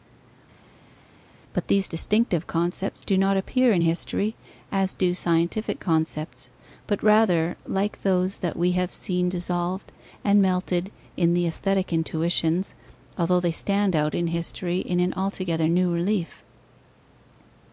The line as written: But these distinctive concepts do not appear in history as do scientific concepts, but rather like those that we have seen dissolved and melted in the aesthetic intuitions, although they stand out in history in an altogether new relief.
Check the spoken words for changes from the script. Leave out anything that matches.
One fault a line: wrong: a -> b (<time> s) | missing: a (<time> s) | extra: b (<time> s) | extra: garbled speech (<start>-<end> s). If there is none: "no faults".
no faults